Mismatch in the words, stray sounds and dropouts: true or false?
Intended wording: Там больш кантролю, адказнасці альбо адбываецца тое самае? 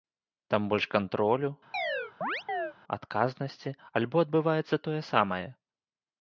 true